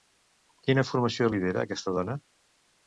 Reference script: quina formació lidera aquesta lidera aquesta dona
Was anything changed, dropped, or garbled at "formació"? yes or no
no